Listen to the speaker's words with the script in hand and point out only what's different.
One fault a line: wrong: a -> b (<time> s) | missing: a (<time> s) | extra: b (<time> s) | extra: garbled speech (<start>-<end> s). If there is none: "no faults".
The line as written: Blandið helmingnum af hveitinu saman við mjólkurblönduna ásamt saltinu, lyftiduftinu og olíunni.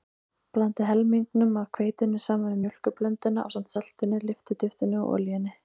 no faults